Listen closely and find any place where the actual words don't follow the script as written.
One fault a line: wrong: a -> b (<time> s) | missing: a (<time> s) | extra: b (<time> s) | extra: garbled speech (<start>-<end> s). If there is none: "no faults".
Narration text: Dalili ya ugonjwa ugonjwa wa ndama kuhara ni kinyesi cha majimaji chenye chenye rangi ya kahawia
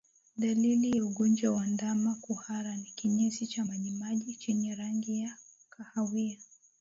missing: ugonjwa (1.5 s)
missing: chenye (4.7 s)